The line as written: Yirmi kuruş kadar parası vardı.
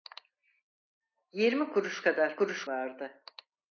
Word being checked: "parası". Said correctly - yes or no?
no